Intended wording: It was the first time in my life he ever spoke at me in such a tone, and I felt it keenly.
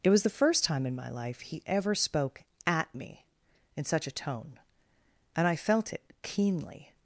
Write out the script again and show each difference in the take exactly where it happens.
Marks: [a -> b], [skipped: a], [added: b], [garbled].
It was the first time in my life he ever spoke at me in such a tone, and I felt it keenly.